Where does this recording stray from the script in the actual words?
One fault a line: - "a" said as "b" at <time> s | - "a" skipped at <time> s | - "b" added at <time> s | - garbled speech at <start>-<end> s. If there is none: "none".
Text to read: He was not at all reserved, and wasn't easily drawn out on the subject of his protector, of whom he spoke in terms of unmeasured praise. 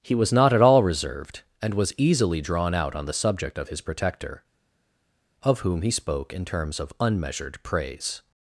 - "wasn't" said as "was" at 1.7 s